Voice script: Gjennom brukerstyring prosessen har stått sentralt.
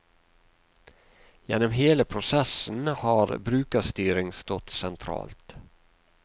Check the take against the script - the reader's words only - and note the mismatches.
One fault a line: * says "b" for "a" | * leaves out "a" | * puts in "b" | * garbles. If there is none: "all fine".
* says "hele" for "brukerstyring"
* puts in "brukerstyring"